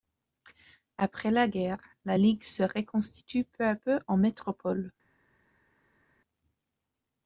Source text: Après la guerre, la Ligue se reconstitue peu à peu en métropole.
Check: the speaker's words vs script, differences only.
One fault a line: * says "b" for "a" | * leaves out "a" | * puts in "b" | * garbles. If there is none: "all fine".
all fine